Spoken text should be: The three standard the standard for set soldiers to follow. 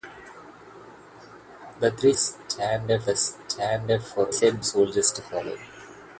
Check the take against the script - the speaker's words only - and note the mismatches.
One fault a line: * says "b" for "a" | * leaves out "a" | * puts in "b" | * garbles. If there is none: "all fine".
all fine